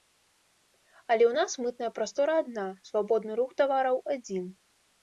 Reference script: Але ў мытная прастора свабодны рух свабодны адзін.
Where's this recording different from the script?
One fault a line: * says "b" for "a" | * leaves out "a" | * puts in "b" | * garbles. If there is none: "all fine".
* puts in "нас"
* puts in "адна"
* says "тавараў" for "свабодны"